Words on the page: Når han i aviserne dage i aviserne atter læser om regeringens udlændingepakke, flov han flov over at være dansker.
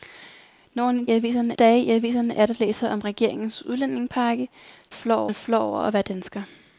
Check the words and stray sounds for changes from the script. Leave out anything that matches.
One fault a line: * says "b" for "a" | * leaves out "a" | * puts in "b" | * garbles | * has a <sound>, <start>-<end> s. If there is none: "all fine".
all fine